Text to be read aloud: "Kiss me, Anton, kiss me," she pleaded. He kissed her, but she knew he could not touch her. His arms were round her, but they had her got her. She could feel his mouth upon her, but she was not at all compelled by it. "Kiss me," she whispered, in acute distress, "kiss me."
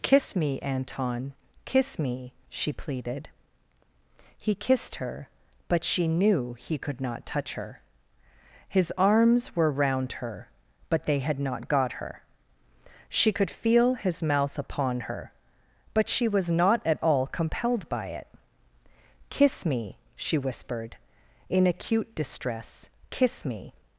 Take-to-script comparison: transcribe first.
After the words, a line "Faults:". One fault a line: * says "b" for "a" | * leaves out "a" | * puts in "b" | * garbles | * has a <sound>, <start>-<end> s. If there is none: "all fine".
"Kiss me, Anton, kiss me," she pleaded. He kissed her, but she knew he could not touch her. His arms were round her, but they had not got her. She could feel his mouth upon her, but she was not at all compelled by it. "Kiss me," she whispered, in acute distress, "kiss me."
Faults:
* says "not" for "her"